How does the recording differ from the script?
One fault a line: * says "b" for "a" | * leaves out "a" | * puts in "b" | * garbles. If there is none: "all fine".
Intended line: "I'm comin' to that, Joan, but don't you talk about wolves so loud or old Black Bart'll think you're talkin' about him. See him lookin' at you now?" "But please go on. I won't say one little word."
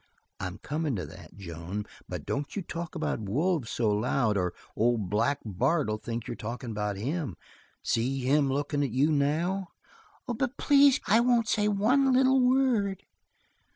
* leaves out "go on"